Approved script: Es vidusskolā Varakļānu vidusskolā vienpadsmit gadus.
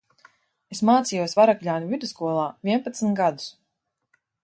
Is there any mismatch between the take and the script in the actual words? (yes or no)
yes